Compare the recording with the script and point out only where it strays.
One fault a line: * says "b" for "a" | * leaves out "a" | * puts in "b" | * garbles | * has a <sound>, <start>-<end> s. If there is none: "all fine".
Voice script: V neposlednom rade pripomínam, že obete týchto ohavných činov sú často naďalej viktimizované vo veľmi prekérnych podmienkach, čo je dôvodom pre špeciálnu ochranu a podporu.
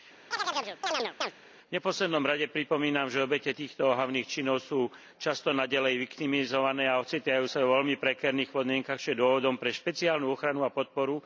* has a chirp, 0.3-1.3 s
* puts in "a ocitajú sa"